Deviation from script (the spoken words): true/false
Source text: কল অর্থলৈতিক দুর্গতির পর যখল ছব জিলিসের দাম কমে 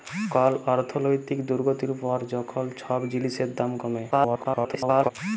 true